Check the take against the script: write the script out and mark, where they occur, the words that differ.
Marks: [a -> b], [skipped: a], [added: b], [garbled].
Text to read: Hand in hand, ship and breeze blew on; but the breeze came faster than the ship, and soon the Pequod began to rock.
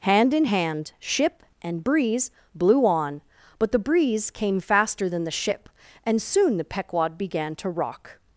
Hand in hand, ship and breeze blew on; but the breeze came faster than the ship, and soon the Pequod began to rock.